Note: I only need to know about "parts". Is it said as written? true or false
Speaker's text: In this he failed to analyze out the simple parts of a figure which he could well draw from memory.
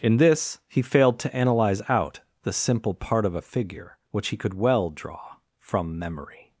false